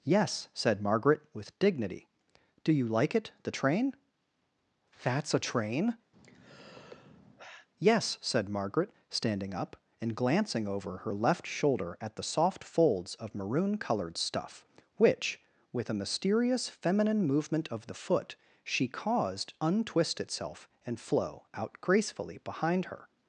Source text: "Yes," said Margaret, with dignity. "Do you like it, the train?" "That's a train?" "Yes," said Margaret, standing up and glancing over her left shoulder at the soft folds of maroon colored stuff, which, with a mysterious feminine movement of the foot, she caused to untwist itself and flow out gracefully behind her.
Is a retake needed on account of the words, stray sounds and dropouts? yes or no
yes